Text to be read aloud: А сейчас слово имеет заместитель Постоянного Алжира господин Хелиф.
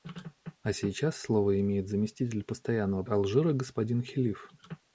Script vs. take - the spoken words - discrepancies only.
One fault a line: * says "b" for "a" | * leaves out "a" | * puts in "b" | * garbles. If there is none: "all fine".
all fine